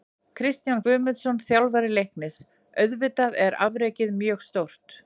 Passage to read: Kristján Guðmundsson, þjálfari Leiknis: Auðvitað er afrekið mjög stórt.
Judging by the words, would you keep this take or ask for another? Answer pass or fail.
pass